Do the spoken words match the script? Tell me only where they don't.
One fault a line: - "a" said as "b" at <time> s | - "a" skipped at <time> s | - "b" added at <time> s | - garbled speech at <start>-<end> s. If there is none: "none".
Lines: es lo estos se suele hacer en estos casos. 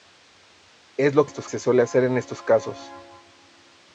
none